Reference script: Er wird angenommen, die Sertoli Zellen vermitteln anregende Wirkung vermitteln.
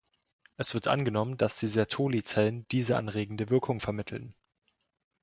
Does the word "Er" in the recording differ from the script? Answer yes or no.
yes